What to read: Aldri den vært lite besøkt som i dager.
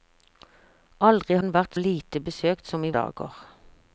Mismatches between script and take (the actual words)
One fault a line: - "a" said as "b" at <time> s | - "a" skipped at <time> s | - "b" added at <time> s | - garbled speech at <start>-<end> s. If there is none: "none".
none